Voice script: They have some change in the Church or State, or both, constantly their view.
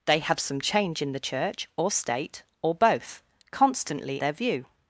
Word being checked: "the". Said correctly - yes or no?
yes